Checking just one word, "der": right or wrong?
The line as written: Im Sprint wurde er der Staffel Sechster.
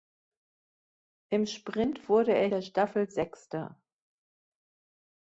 right